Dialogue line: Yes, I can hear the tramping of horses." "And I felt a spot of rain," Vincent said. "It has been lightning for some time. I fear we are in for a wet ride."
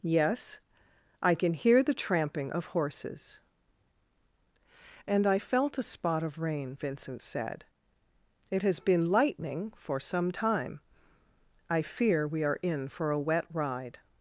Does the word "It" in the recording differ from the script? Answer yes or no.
no